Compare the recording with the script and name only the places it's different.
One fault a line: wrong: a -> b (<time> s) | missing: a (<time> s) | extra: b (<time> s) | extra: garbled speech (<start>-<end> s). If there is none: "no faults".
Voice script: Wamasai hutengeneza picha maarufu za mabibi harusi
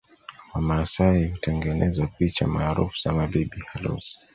no faults